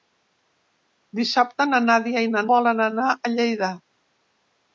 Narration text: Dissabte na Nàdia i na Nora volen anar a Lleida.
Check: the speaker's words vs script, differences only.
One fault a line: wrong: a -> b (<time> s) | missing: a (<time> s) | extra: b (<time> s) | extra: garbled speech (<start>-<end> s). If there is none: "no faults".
missing: Nora (2.5 s)